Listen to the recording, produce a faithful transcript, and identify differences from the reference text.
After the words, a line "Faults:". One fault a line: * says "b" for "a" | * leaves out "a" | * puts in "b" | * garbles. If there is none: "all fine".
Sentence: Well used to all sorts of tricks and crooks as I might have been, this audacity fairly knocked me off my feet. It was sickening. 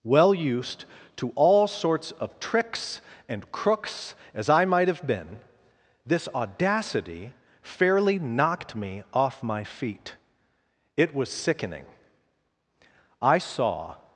Well used to all sorts of tricks and crooks as I might have been, this audacity fairly knocked me off my feet. It was sickening. I saw
Faults:
* puts in "I saw"